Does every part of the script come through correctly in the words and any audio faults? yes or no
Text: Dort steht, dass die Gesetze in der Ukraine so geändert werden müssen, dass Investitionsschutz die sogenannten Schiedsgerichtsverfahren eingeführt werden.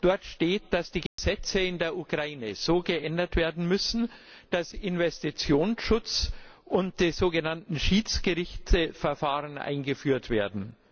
no